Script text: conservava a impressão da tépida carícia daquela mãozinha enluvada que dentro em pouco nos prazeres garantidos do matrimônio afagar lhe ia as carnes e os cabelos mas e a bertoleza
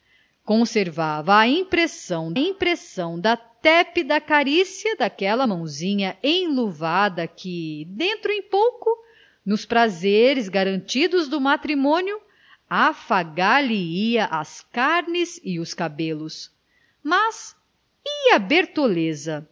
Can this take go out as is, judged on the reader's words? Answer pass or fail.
fail